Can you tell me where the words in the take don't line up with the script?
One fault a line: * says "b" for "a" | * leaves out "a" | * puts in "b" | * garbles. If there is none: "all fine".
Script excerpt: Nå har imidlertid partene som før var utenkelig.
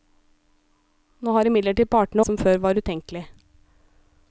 all fine